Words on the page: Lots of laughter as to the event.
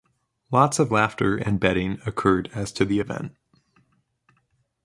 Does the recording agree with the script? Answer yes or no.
no